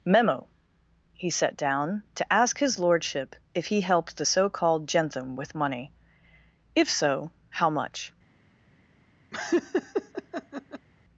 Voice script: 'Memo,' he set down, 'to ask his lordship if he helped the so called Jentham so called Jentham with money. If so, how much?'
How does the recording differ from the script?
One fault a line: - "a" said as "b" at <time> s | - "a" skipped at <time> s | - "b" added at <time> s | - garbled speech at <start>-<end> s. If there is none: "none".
- "so called Jentham" skipped at 5.4 s